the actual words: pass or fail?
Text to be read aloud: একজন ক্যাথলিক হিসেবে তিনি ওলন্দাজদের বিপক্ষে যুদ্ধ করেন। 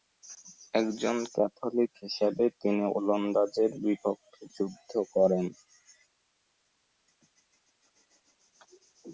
pass